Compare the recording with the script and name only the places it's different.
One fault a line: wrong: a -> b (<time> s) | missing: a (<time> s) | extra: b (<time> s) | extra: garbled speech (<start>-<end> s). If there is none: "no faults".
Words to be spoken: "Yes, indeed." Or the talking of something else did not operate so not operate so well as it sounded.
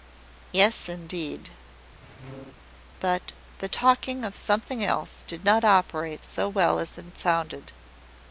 wrong: Or -> But (3.0 s)
missing: not operate so (6.5 s)